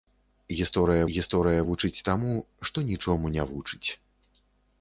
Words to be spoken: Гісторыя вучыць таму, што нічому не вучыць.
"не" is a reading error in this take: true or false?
false